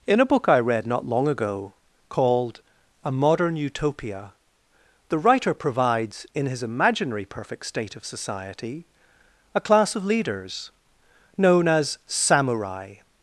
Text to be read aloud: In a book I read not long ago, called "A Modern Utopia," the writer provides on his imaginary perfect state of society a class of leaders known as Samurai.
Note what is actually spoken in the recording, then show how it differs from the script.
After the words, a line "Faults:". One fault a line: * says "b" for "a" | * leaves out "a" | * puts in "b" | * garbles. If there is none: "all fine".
In a book I read not long ago, called "A Modern Utopia," the writer provides in his imaginary perfect state of society a class of leaders known as Samurai.
Faults:
* says "in" for "on"